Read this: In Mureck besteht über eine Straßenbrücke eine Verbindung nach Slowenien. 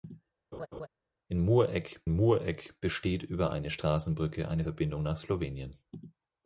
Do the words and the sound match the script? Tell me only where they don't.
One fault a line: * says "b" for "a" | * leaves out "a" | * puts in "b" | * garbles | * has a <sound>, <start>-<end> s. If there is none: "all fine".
* has a laugh, 0.5-0.9 s
* puts in "Mureck"